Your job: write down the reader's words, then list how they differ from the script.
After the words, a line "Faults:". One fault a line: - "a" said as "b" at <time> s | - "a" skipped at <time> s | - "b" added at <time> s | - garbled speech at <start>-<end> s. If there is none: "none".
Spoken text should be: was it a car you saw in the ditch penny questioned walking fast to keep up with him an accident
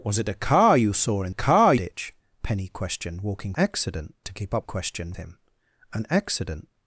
was it a car you saw in car ditch penny questioned walking accident to keep up questioned him an accident
Faults:
- "the" said as "car" at 1.3 s
- "fast" said as "accident" at 3.5 s
- "with" said as "questioned" at 4.6 s